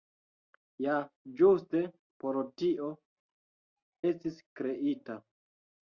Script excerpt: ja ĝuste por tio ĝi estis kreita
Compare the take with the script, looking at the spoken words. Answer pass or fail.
fail